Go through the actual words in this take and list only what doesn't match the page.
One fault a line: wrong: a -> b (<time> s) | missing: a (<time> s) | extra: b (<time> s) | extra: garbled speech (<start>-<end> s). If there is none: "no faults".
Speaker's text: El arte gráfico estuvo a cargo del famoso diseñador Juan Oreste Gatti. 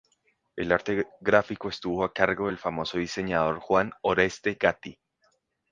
no faults